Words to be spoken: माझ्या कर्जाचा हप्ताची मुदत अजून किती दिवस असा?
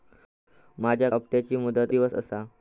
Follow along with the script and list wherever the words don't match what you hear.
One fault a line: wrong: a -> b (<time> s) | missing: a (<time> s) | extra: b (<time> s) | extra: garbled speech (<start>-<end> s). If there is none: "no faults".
missing: कर्जाचा (1.1 s)
missing: अजून किती (1.9 s)